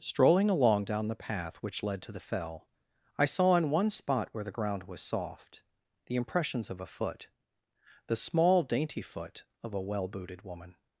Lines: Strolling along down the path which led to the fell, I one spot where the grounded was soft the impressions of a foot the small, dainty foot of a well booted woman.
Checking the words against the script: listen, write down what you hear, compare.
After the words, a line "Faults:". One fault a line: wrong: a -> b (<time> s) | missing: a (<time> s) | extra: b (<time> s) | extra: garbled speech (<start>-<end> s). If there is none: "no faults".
Strolling along down the path which led to the fell, I saw in one spot where the ground was soft the impressions of a foot the small, dainty foot of a well booted woman.
Faults:
extra: saw in (3.2 s)
wrong: grounded -> ground (4.6 s)